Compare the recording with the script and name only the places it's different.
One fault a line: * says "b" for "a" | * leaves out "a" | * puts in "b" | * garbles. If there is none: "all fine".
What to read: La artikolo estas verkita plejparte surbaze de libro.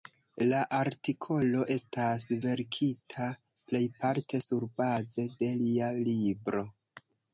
* puts in "lia"